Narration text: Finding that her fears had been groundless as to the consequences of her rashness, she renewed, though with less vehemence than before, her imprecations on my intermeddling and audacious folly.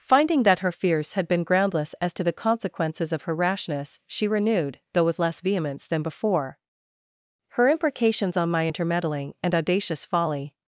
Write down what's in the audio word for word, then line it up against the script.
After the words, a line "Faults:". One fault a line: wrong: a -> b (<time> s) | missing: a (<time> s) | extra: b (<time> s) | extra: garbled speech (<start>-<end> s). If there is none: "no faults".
Finding that her fears had been groundless as to the consequences of her rashness, she renewed, though with less vehemence than before, her imprecations on my intermeddling and audacious folly.
Faults:
no faults